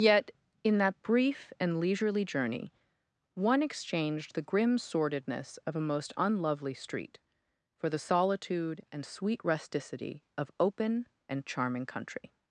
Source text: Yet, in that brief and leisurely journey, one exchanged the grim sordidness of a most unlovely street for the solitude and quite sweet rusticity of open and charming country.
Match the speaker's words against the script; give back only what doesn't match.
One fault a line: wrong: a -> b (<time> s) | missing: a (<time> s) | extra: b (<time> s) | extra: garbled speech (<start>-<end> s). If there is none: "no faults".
missing: quite (9.1 s)